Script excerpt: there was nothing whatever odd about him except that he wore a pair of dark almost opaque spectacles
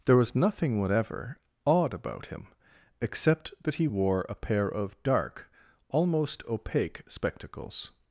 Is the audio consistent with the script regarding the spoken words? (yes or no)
yes